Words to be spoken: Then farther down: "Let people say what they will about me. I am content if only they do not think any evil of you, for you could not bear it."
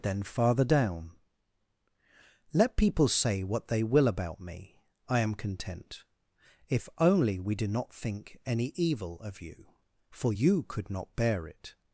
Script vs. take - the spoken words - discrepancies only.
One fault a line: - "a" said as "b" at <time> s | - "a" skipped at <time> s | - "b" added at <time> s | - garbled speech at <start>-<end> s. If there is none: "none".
- "they" said as "we" at 7.4 s